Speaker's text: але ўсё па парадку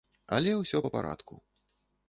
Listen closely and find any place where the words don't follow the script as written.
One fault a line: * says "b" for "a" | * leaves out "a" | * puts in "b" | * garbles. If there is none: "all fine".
all fine